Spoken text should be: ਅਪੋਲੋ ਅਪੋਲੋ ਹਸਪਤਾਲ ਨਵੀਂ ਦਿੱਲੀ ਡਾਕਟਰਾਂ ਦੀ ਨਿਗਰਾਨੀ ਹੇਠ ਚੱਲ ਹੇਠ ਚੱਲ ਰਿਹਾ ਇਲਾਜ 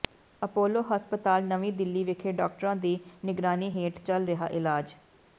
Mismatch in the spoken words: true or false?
true